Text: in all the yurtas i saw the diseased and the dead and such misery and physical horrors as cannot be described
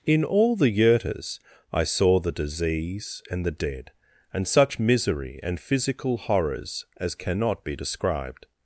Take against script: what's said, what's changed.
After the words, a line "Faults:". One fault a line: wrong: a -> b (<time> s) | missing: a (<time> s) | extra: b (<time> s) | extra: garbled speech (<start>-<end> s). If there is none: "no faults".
in all the yurtas i saw the disease and the dead and such misery and physical horrors as cannot be described
Faults:
wrong: diseased -> disease (2.3 s)